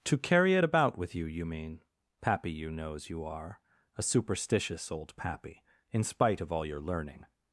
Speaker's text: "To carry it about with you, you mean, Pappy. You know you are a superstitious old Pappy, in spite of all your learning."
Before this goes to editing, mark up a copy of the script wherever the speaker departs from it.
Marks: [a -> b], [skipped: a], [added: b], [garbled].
"To carry it about with you, you mean, Pappy. You [know -> knows] you are a superstitious old Pappy, in spite of all your learning."